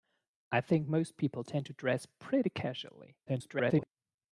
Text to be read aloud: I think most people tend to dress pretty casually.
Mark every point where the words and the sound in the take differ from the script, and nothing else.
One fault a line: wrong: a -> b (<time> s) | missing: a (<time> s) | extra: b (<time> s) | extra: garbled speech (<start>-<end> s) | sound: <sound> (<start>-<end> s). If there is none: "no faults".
extra: garbled speech (3.3-3.9 s)